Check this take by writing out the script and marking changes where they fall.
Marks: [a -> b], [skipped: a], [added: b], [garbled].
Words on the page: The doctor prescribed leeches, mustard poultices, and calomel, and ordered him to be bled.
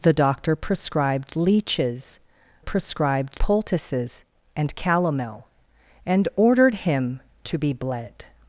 The doctor prescribed leeches, [mustard -> prescribed] poultices, and calomel, and ordered him to be bled.